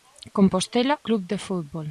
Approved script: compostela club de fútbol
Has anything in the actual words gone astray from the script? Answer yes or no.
no